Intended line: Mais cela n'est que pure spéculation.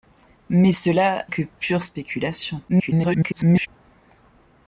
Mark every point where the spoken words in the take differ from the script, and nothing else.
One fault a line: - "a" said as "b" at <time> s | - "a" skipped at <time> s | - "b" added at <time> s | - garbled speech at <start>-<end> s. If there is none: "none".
- "n'est" skipped at 1.3 s
- garbled speech at 2.7-3.7 s